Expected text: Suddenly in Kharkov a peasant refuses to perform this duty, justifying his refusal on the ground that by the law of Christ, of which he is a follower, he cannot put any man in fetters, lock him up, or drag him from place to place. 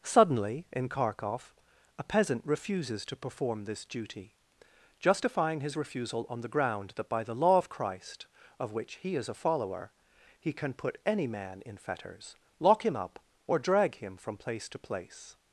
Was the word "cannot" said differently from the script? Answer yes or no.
yes